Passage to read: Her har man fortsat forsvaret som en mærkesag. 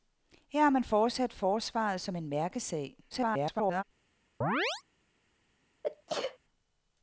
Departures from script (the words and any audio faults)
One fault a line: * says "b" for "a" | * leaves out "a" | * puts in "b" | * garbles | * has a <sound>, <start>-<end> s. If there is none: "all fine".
* garbles
* has a chirp, 4.4-4.8 s
* has a sneeze, 5.8-6.4 s